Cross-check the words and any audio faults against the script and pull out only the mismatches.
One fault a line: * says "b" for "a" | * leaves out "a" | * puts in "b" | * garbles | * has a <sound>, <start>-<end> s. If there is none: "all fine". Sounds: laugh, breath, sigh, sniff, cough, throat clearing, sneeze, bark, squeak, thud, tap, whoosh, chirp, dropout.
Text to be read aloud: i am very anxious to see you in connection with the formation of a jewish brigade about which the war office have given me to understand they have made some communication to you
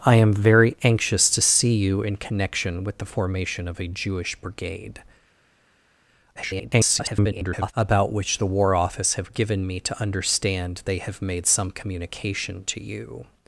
* garbles